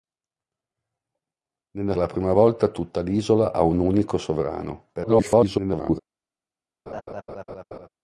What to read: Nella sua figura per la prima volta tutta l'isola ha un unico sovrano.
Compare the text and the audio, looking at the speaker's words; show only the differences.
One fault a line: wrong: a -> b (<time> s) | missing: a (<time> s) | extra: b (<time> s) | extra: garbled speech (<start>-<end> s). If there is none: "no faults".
missing: sua figura per (1.9 s)
extra: garbled speech (4.9-6.0 s)